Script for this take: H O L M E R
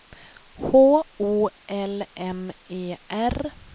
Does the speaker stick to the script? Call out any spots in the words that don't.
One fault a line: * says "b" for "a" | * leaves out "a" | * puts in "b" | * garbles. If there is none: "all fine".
all fine